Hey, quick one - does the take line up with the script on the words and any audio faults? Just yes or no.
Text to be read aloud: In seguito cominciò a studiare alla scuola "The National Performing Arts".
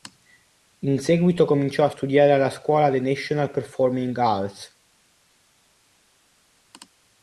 yes